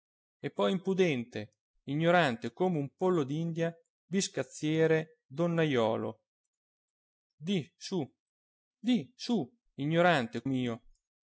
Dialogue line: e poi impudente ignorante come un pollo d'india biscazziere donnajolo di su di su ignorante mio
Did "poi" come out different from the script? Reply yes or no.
no